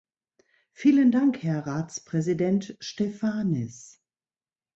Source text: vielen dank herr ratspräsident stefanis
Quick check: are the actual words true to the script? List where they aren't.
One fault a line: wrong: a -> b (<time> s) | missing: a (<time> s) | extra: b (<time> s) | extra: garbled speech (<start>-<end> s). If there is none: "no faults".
no faults